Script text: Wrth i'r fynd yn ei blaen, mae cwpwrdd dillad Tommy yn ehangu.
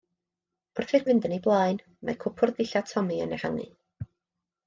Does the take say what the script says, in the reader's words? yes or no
yes